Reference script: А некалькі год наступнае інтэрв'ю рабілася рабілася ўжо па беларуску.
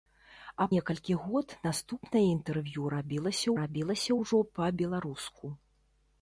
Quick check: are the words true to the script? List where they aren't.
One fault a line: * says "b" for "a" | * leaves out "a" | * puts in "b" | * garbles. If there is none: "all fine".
all fine